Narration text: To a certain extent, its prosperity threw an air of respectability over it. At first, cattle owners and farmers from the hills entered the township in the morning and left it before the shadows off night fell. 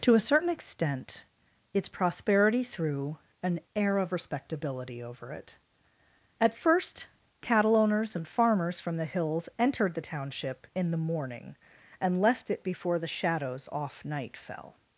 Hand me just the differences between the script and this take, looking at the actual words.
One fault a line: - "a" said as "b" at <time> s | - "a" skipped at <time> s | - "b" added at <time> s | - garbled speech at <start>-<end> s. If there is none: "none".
none